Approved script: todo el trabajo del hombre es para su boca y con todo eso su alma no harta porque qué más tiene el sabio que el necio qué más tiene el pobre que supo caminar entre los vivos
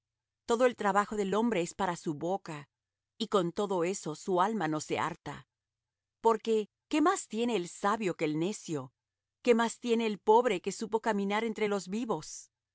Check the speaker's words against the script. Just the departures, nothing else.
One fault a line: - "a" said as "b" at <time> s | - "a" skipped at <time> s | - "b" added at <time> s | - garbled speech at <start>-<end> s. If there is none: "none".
- "se" added at 4.8 s